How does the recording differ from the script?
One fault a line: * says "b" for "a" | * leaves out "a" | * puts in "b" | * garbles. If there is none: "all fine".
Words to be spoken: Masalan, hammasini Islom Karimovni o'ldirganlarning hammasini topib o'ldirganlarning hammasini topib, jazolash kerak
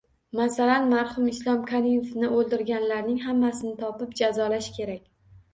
* says "marhum" for "hammasini"
* leaves out "o'ldirganlarning hammasini topib"